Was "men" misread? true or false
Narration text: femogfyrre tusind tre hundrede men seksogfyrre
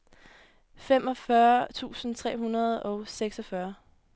true